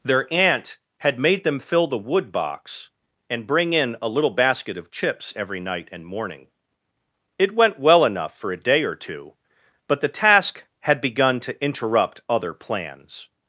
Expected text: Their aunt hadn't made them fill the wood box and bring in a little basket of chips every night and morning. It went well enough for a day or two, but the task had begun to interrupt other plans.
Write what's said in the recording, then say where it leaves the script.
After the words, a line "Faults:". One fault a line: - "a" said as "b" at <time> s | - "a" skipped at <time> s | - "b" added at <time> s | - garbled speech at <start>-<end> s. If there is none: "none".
Their aunt had made them fill the wood box and bring in a little basket of chips every night and morning. It went well enough for a day or two, but the task had begun to interrupt other plans.
Faults:
- "hadn't" said as "had" at 1.0 s